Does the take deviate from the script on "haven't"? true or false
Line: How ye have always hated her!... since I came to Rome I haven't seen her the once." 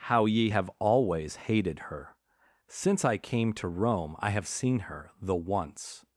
true